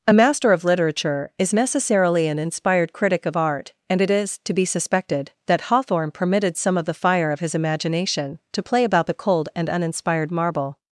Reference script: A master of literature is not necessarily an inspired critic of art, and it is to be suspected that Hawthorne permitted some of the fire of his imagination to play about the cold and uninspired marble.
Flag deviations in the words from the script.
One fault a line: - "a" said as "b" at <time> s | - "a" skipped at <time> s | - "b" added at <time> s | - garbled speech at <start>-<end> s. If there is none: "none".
- "not" skipped at 1.5 s